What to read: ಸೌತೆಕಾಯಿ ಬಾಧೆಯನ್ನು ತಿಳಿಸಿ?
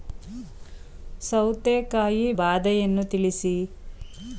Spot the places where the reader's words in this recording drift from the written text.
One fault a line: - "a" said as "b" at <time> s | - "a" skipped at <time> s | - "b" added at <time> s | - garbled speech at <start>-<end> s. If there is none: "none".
none